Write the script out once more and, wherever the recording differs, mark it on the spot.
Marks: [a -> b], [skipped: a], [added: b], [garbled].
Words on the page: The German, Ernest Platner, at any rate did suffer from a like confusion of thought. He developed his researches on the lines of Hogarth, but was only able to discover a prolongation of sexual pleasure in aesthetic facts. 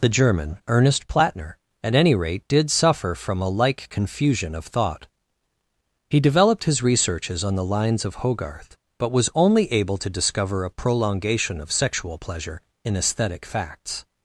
The German, Ernest Platner, at any rate did suffer from a like confusion of thought. He developed his researches on the lines of Hogarth, but was only able to discover a prolongation of sexual pleasure in aesthetic facts.